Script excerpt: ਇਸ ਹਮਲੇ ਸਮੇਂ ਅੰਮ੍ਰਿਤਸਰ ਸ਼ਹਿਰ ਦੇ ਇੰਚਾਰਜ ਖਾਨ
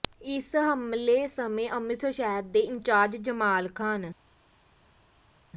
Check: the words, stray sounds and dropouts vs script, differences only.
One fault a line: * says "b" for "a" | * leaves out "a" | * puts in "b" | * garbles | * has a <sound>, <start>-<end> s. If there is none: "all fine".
* puts in "ਜਮਾਲ"